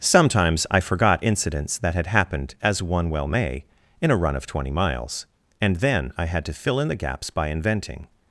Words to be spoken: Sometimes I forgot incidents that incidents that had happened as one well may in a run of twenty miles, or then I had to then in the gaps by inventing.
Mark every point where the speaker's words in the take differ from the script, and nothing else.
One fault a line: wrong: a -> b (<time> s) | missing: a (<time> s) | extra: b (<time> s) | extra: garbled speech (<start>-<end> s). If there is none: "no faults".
missing: incidents that (1.9 s)
wrong: or -> and (5.6 s)
wrong: then -> fill (6.5 s)